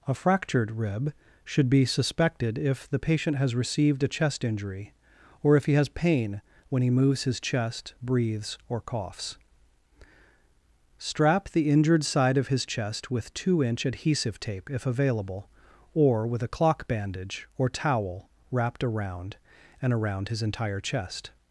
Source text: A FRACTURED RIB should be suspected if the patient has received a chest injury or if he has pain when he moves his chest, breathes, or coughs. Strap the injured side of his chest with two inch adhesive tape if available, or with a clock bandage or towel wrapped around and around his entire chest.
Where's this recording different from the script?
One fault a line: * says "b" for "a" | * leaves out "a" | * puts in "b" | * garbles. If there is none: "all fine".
all fine